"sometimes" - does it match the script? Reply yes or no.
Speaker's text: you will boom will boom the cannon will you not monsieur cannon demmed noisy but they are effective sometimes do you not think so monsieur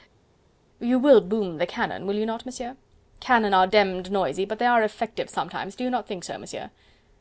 yes